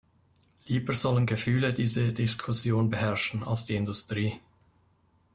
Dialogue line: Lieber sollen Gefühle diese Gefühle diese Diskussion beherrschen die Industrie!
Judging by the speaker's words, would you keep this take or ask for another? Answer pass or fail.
fail